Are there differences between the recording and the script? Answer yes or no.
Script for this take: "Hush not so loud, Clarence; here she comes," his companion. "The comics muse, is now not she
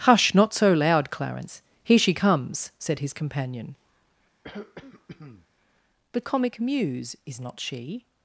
yes